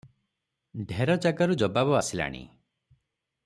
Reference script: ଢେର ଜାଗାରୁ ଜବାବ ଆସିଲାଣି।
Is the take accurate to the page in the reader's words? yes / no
yes